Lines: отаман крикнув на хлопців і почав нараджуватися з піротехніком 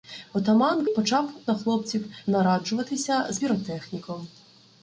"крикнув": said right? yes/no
no